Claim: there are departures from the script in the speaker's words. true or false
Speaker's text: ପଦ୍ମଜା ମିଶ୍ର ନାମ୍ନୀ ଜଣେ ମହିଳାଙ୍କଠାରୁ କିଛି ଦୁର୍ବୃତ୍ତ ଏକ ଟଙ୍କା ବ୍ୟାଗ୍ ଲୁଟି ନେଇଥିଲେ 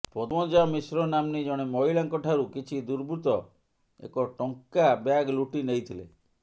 false